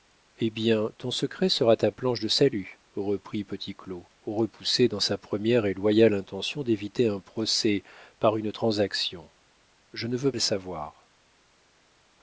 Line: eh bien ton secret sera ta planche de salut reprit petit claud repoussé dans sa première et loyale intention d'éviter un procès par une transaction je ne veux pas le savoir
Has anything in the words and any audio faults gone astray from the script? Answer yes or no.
yes